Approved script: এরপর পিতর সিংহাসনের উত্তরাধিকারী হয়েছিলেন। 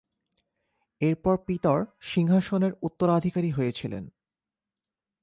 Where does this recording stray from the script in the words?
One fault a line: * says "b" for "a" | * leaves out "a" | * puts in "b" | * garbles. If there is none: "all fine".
all fine